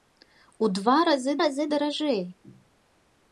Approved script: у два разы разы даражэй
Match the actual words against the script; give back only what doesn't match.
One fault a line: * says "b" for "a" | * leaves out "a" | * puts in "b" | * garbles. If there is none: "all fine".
all fine